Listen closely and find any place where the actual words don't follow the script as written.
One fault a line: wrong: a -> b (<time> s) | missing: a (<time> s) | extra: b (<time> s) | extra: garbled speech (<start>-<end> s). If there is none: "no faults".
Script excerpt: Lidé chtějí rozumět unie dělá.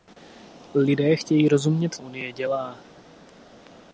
no faults